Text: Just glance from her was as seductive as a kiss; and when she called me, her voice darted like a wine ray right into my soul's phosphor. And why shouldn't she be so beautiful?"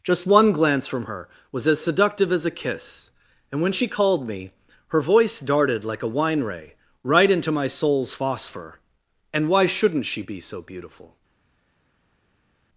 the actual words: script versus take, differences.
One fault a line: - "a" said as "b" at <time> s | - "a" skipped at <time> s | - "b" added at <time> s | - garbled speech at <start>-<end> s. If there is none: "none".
- "one" added at 0.2 s